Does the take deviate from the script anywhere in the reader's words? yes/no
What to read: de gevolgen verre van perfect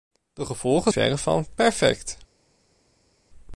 no